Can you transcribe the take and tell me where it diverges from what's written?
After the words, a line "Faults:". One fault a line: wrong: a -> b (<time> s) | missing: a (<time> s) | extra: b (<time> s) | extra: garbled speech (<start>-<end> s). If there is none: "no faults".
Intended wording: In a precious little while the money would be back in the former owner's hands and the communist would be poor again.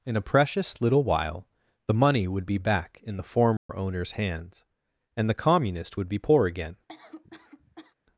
In a precious little while the money would be back in the former owner's hands and the communist would be poor again.
Faults:
no faults